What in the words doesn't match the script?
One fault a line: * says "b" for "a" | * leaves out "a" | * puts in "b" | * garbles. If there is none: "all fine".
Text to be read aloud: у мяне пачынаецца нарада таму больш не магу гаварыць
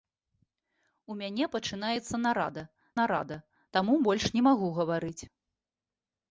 * puts in "нарада"